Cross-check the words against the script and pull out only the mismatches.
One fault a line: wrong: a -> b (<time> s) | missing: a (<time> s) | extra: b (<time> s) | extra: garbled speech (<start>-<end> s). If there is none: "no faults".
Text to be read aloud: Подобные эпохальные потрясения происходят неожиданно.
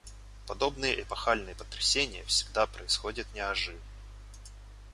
extra: всегда (2.3 s)